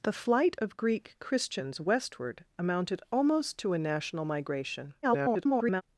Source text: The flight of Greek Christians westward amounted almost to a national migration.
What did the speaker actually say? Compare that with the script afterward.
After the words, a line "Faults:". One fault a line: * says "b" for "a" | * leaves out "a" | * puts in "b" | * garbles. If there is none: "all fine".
The flight of Greek Christians westward amounted almost to a national migration. [garbled]
Faults:
* garbles